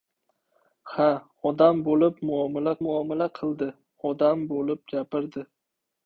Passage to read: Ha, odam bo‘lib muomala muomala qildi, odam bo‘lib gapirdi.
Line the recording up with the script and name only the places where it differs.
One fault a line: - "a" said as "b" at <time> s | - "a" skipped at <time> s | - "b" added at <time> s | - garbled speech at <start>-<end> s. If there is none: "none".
none